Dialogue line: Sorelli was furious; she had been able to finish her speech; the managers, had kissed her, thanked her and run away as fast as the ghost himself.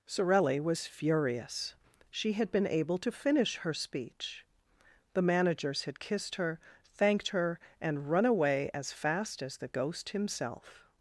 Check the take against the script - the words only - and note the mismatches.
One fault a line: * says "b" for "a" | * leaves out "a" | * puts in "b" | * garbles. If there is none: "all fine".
all fine